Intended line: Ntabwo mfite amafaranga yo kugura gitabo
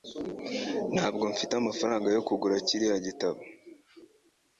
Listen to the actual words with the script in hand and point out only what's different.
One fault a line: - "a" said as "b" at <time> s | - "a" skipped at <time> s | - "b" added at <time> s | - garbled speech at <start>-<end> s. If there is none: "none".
- "kiriya" added at 2.7 s